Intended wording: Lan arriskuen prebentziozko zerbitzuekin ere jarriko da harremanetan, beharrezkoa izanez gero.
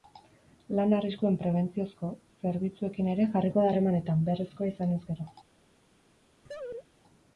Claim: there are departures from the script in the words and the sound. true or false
true